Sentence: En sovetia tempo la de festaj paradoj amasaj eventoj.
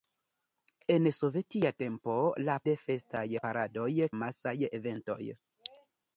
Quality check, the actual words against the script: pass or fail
pass